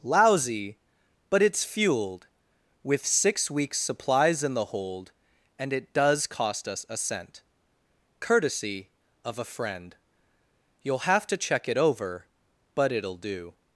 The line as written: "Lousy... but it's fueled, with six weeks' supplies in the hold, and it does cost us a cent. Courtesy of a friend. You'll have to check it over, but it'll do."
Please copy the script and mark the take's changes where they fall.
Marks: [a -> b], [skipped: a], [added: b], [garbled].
"Lousy... but it's fueled, with six weeks' supplies in the hold, and it does cost us a cent. Courtesy of a friend. You'll have to check it over, but it'll do."